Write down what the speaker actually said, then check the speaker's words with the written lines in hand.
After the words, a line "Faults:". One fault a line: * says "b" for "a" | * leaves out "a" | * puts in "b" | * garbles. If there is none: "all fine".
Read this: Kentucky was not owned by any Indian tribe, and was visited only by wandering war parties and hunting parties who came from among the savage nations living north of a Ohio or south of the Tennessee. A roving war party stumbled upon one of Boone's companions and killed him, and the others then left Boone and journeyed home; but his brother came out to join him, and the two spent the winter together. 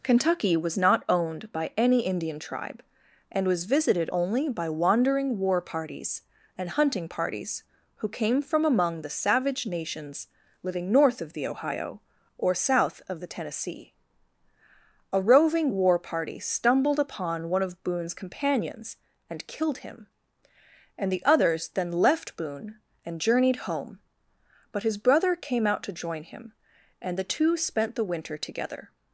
Kentucky was not owned by any Indian tribe, and was visited only by wandering war parties and hunting parties who came from among the savage nations living north of the Ohio or south of the Tennessee. A roving war party stumbled upon one of Boone's companions and killed him, and the others then left Boone and journeyed home; but his brother came out to join him, and the two spent the winter together.
Faults:
* says "the" for "a"